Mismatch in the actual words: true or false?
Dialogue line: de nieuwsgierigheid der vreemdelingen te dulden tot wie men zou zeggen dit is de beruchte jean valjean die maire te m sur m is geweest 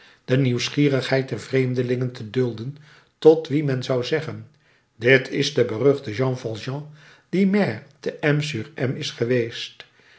false